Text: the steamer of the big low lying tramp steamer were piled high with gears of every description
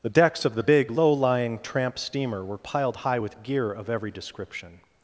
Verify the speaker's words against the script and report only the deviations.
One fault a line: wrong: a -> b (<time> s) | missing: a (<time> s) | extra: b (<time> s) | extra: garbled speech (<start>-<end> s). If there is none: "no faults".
wrong: steamer -> decks (0.1 s)
wrong: gears -> gear (3.4 s)